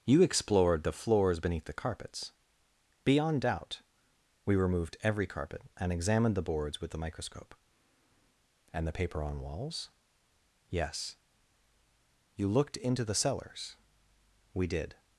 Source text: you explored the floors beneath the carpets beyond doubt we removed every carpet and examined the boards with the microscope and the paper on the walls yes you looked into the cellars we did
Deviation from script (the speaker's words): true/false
true